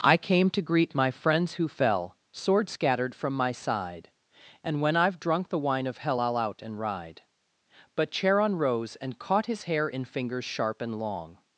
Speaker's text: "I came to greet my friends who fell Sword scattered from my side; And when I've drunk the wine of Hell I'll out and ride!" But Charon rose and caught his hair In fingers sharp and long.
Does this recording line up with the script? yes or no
yes